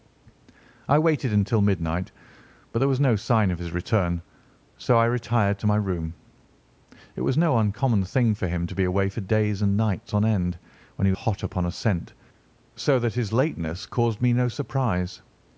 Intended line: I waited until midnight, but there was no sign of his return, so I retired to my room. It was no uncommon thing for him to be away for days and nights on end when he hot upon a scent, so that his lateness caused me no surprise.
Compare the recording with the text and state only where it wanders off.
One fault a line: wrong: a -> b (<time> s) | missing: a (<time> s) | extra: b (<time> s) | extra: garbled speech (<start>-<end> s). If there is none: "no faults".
no faults